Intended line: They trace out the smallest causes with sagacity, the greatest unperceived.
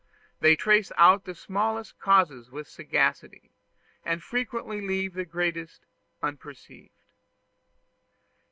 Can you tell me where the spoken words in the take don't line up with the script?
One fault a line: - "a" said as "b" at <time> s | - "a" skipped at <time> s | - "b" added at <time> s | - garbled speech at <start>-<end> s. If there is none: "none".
- "and frequently leave" added at 4.0 s